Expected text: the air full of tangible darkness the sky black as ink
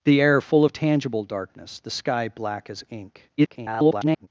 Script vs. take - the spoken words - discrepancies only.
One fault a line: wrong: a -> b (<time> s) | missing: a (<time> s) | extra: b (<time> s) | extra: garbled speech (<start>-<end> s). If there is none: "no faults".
extra: garbled speech (3.4-4.3 s)